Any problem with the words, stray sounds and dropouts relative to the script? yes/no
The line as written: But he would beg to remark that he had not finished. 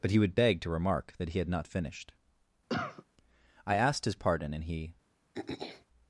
yes